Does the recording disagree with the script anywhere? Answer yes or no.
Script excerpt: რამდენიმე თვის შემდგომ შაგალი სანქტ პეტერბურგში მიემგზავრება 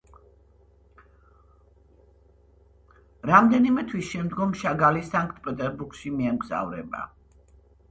no